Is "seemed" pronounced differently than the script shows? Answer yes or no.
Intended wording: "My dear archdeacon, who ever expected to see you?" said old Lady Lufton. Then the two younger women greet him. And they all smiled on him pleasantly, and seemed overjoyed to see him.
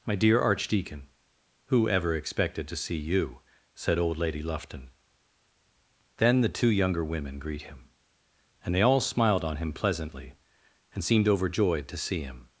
no